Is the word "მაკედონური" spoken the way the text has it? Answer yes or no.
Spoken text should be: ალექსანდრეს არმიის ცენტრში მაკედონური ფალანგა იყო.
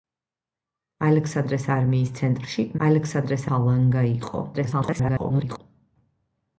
no